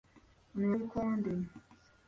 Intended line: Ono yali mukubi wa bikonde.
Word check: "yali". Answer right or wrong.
wrong